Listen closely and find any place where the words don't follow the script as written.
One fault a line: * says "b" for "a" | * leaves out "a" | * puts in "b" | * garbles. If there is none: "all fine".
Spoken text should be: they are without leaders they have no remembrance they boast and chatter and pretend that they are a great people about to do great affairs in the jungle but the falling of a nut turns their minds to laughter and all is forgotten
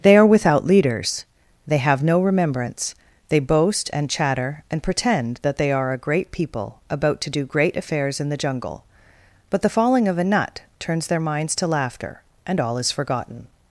all fine